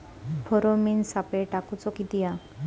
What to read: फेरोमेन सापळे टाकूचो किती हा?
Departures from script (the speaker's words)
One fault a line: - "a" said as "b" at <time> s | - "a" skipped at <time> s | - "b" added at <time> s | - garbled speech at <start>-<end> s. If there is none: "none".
none